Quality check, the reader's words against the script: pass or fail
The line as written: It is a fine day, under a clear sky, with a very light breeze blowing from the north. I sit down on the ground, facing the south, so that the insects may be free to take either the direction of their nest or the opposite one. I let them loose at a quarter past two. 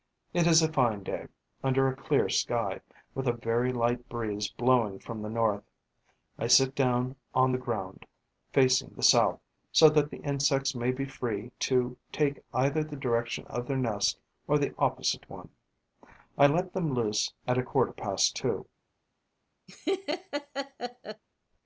pass